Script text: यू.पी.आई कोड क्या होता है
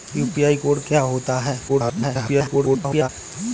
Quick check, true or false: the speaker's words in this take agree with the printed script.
false